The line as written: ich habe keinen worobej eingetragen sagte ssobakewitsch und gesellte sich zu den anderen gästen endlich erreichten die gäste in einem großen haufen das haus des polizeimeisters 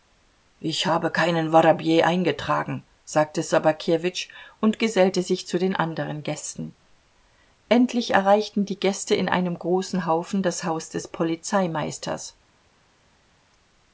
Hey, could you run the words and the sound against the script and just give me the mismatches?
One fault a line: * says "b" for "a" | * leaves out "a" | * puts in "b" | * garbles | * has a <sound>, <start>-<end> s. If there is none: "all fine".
all fine